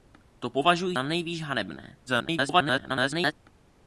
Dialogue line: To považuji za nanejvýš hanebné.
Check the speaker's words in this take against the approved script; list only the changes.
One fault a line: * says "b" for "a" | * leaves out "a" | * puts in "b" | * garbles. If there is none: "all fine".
* leaves out "za"
* garbles